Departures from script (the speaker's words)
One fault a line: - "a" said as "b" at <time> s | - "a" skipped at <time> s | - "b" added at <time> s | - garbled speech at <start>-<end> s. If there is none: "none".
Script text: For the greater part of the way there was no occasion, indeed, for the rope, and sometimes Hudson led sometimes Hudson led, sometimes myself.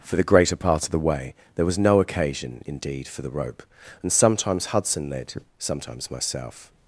- "Hudson led sometimes" skipped at 6.1 s